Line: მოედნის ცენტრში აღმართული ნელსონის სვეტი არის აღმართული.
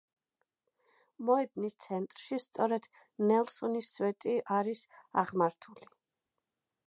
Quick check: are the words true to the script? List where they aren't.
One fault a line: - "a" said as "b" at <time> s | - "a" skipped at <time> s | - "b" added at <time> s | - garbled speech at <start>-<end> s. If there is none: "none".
- "აღმართული" said as "სწორედ" at 2.5 s